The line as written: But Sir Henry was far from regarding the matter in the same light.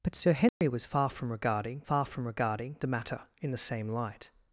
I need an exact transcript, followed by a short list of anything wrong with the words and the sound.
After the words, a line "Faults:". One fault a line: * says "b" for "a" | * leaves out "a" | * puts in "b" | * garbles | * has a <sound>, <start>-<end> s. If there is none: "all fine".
But Sir Henry was far from regarding far from regarding the matter in the same light.
Faults:
* has a dropout, 0.5-0.6 s
* puts in "far from regarding"